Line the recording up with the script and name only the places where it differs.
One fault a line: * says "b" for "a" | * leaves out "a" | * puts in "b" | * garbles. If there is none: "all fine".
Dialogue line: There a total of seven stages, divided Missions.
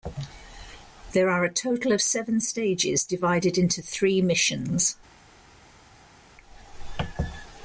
* puts in "are"
* puts in "into three"